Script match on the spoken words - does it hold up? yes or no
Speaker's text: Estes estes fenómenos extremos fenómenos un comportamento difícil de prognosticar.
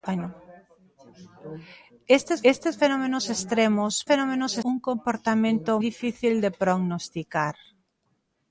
yes